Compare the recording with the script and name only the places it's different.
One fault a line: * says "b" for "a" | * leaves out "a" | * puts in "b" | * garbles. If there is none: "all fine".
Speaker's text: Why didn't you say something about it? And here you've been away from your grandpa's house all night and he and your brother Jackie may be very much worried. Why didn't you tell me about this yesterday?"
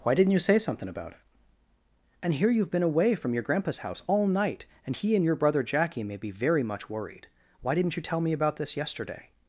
all fine